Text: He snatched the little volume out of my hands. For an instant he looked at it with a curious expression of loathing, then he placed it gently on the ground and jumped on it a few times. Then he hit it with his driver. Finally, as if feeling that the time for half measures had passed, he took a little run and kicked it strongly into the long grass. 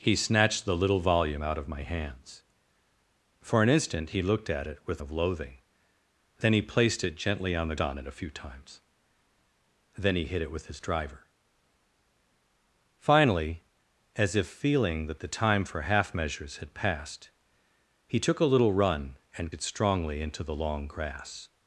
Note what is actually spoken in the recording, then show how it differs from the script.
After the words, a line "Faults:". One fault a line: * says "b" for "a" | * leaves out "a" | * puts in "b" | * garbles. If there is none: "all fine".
He snatched the little volume out of my hands. For an instant he looked at it with of loathing, then he placed it gently on the on it a few times. Then he hit it with his driver. Finally, as if feeling that the time for half measures had passed, he took a little run and it strongly into the long grass.
Faults:
* leaves out "a curious expression"
* leaves out "ground and jumped"
* leaves out "kicked"